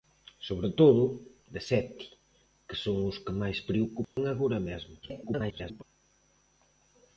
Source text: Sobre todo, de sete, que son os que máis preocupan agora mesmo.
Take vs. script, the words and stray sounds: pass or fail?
fail